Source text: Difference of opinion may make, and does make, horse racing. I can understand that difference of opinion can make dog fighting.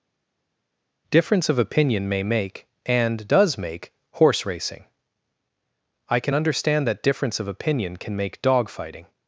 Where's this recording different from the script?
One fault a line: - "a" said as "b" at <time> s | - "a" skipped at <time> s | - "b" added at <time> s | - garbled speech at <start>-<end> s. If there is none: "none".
none